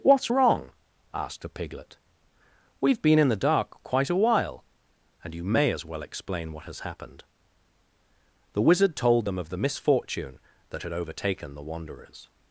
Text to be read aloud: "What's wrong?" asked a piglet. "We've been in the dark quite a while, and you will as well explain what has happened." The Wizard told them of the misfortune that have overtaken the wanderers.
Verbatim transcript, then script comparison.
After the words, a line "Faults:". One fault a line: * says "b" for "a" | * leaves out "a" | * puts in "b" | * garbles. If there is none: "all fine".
"What's wrong?" asked a piglet. "We've been in the dark quite a while, and you may as well explain what has happened." The Wizard told them of the misfortune that had overtaken the wanderers.
Faults:
* says "may" for "will"
* says "had" for "have"